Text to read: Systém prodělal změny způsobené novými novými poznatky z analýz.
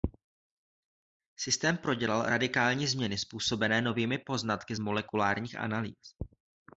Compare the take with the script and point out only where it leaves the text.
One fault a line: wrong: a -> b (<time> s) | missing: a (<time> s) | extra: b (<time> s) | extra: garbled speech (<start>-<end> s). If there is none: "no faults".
extra: radikální (2.3 s)
missing: novými (4.2 s)
extra: molekulárních (4.8 s)